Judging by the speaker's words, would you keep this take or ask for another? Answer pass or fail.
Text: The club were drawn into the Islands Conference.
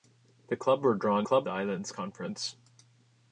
fail